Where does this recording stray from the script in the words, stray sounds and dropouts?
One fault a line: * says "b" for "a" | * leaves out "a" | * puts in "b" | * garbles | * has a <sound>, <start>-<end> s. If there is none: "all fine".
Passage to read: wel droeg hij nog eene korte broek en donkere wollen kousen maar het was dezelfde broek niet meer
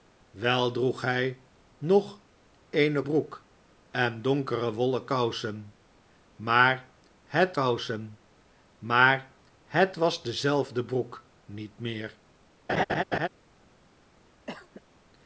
* leaves out "korte"
* puts in "kousen maar het"
* has a laugh, 12.7-13.3 s
* has a cough, 14.5-14.8 s